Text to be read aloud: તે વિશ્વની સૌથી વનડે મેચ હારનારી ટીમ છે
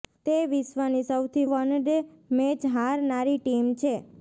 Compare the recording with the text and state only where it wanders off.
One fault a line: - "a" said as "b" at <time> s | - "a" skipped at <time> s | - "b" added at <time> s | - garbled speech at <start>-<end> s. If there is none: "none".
none